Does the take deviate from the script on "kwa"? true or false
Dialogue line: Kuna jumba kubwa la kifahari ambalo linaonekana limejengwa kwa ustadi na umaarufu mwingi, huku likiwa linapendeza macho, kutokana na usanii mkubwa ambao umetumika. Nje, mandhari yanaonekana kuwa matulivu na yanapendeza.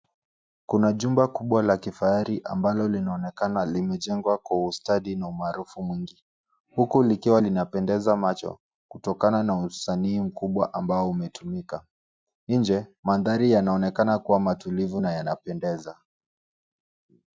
false